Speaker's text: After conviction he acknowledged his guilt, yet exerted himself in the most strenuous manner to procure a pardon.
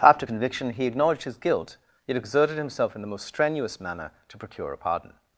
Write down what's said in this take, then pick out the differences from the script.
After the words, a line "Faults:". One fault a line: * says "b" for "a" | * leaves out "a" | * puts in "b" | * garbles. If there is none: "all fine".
After conviction he acknowledged his guilt, yet exerted himself in the most strenuous manner to procure a pardon.
Faults:
all fine